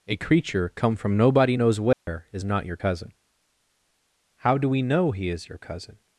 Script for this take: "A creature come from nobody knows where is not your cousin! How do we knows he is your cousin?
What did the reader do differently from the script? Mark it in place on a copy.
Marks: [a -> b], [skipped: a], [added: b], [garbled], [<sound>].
"A creature come from nobody knows where [dropout] is not your cousin! How do we [knows -> know] he is your cousin?